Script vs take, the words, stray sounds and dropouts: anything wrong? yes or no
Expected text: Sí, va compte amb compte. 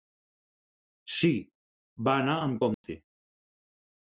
yes